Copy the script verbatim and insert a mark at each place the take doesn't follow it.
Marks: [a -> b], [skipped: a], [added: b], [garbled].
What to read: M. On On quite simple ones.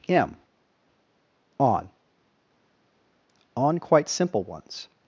M. On On quite simple ones.